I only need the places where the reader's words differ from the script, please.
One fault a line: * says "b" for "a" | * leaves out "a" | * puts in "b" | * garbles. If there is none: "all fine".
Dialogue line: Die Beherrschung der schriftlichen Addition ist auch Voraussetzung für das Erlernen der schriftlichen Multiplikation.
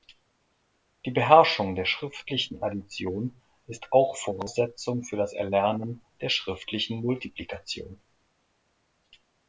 all fine